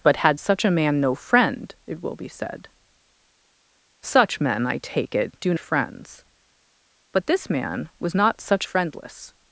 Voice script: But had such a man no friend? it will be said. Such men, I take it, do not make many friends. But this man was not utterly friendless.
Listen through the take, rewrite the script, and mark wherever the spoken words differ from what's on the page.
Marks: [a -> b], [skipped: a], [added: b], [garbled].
But had such a man no friend? it will be said. Such men, I take it, do [skipped: not make many] friends. But this man was not [utterly -> such] friendless.